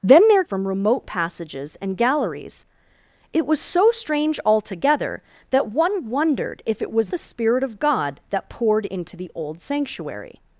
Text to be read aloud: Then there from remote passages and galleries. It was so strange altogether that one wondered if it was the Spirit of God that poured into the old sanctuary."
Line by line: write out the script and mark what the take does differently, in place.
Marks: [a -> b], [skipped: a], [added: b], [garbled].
Then there from remote passages and galleries. It was so strange altogether that one wondered if it was the Spirit of God that poured into the old sanctuary."